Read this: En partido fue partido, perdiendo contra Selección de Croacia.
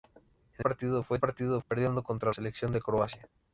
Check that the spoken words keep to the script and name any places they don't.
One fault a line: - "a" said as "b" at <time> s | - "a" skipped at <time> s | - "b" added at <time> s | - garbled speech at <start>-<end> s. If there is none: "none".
none